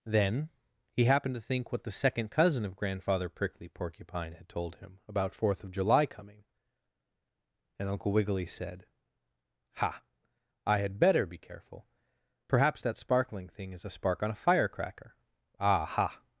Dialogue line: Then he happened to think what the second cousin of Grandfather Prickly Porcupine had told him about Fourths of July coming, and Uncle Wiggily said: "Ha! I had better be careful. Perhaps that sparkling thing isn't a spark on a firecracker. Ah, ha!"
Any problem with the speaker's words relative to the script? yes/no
yes